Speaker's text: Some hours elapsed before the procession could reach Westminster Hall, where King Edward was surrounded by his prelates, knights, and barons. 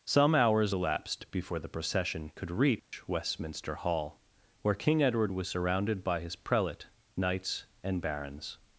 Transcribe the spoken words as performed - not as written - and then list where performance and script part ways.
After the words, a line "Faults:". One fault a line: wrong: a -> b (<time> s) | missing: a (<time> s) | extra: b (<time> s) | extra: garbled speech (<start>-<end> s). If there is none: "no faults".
Some hours elapsed before the procession could reach Westminster Hall, where King Edward was surrounded by his prelate, knights, and barons.
Faults:
wrong: prelates -> prelate (6.3 s)